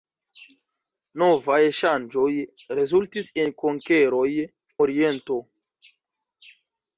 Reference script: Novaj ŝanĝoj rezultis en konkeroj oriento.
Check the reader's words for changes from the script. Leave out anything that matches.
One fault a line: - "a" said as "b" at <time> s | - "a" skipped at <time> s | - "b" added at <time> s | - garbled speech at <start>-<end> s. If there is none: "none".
none